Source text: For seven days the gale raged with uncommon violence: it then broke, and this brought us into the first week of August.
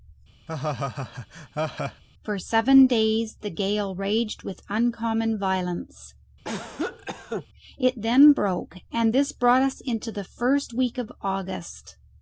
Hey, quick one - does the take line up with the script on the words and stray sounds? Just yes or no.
no